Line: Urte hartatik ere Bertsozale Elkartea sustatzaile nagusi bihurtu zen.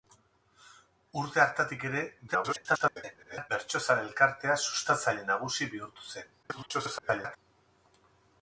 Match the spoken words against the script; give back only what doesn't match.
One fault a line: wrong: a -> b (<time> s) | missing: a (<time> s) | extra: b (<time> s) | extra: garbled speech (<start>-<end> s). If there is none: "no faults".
extra: garbled speech (2.3-3.5 s)
extra: garbled speech (6.4-7.4 s)